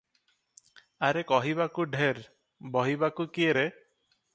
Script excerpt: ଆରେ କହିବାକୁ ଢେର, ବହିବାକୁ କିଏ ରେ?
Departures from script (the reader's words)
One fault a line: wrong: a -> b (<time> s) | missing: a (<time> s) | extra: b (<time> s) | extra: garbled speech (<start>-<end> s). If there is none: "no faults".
no faults